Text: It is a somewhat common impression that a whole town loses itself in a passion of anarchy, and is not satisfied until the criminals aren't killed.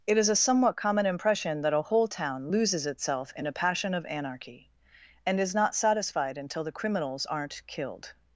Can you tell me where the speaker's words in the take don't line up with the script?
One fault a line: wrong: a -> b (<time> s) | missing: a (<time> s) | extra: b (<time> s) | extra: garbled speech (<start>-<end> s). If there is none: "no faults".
no faults